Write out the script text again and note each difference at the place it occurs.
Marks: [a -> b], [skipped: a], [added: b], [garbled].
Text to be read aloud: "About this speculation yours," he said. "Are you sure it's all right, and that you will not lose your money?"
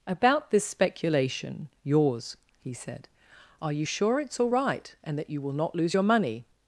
"About this speculation yours," he said. "Are you sure it's all right, and that you will not lose your money?"